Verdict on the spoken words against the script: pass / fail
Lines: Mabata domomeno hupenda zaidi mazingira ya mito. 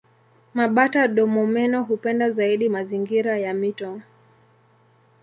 pass